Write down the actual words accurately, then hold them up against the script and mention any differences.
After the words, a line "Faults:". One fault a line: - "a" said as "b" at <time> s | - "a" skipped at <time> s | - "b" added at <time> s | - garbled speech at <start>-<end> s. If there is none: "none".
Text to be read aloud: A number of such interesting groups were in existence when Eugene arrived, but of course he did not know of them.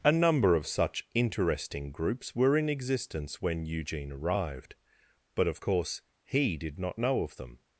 A number of such interesting groups were in existence when Eugene arrived, but of course he did not know of them.
Faults:
none